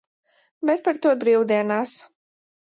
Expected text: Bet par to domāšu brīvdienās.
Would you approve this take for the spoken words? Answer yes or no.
no